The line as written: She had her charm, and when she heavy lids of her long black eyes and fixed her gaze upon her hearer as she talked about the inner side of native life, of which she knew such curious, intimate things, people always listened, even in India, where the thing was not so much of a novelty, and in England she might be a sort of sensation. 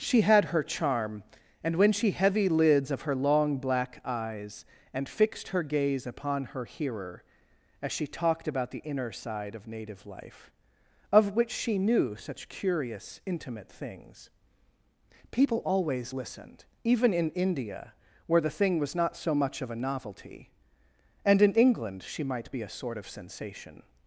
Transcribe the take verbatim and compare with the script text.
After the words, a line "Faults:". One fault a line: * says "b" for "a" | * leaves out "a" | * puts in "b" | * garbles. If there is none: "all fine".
She had her charm, and when she heavy lids of her long black eyes and fixed her gaze upon her hearer as she talked about the inner side of native life, of which she knew such curious, intimate things, people always listened, even in India, where the thing was not so much of a novelty, and in England she might be a sort of sensation.
Faults:
all fine